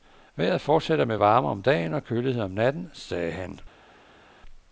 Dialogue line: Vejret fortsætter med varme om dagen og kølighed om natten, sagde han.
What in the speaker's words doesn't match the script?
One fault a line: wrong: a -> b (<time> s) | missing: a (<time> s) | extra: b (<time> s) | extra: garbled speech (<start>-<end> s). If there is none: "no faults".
no faults